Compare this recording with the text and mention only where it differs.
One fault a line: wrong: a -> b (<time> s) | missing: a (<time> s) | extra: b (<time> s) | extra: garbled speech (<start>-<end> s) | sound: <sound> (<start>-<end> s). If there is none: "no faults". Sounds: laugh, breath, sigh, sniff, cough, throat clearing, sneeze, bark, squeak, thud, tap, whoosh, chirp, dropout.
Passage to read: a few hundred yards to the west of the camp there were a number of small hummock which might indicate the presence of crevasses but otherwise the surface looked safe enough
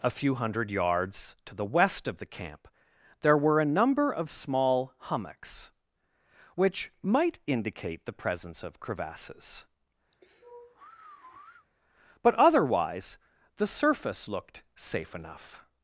wrong: hummock -> hummocks (5.0 s)
sound: sigh (10.1-11.7 s)